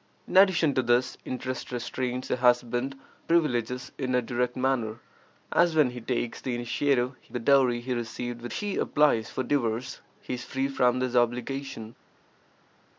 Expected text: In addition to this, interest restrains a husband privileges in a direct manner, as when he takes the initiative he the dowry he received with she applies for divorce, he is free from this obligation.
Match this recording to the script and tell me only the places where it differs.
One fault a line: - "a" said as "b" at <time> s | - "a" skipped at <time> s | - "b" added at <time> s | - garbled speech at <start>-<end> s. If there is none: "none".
none